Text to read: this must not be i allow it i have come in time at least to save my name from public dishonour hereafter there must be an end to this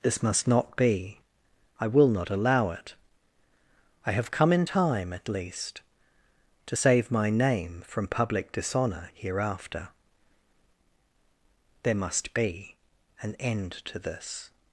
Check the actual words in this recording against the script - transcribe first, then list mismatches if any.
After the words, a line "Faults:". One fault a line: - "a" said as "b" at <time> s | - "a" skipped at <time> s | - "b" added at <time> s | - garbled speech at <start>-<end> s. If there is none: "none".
this must not be i will not allow it i have come in time at least to save my name from public dishonour hereafter there must be an end to this
Faults:
- "will not" added at 1.9 s